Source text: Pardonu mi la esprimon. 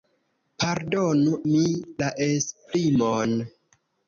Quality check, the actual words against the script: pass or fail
pass